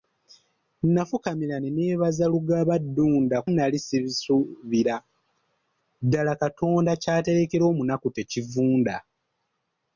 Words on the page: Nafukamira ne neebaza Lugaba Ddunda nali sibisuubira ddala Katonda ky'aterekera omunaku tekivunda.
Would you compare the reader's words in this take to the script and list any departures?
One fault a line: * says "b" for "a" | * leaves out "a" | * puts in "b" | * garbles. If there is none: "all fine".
all fine